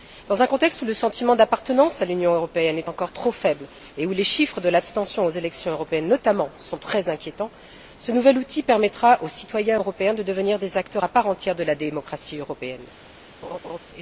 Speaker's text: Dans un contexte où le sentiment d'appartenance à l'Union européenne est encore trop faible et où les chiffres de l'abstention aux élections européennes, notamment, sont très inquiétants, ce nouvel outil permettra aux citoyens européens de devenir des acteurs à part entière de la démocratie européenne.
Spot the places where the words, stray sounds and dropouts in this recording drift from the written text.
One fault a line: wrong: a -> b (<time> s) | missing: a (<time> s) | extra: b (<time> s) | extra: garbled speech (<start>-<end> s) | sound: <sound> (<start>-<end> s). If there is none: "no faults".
sound: laugh (13.4-13.8 s)